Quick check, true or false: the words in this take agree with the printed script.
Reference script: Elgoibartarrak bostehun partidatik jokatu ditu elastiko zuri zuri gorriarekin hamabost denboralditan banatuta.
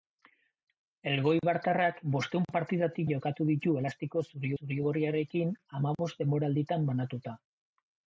true